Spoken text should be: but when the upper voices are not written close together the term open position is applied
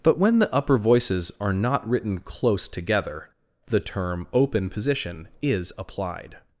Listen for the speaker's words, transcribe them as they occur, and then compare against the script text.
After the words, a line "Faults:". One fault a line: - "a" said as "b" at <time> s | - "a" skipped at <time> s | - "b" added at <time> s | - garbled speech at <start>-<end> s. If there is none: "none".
but when the upper voices are not written close together the term open position is applied
Faults:
none